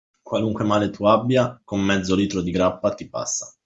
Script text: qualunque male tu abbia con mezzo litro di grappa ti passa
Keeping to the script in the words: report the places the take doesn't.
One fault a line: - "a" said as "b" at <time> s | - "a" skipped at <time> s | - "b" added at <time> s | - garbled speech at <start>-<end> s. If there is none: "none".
none